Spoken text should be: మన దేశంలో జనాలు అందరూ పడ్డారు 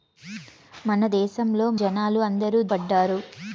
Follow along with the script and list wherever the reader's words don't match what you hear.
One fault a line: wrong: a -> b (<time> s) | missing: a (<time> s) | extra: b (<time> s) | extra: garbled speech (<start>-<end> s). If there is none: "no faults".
no faults